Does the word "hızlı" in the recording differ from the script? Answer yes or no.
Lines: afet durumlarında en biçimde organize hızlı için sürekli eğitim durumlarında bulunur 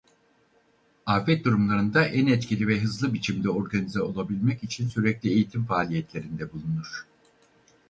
yes